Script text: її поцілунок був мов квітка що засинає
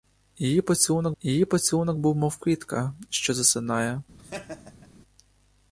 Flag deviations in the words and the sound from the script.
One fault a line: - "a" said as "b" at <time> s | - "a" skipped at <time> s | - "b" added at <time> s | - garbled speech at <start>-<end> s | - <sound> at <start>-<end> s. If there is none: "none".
- "її поцілунок" added at 1.2 s
- laugh at 4.2-4.9 s